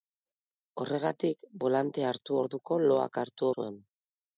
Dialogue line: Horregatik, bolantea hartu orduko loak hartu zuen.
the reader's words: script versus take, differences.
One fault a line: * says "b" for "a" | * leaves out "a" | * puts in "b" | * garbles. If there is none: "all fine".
all fine